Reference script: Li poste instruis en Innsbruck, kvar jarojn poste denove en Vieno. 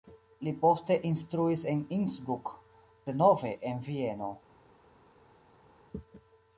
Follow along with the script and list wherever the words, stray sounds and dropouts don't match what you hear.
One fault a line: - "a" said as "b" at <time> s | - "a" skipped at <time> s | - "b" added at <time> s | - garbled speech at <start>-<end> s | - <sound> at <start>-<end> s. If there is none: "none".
- "kvar jarojn poste" skipped at 2.5 s